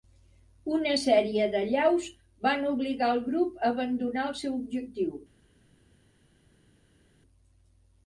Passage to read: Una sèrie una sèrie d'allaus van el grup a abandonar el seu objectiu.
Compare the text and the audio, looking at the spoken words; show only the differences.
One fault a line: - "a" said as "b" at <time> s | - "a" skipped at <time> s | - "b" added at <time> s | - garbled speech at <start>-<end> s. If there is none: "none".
- "una sèrie" skipped at 1.5 s
- "obligar" added at 2.7 s